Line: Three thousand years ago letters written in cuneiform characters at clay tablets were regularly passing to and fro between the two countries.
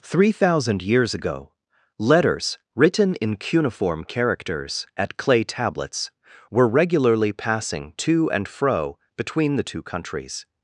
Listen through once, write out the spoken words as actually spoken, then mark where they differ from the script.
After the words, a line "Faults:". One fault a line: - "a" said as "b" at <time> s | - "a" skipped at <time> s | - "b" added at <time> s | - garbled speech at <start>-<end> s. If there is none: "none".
Three thousand years ago letters written in cuneiform characters at clay tablets were regularly passing to and fro between the two countries.
Faults:
none